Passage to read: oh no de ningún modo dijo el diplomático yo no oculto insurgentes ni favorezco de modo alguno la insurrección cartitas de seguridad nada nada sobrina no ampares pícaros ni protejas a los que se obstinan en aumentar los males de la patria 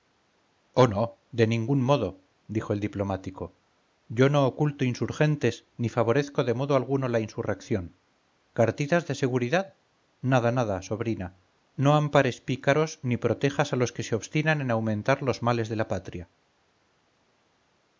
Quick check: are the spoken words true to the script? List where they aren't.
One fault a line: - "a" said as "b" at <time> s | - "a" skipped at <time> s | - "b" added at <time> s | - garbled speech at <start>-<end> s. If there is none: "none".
none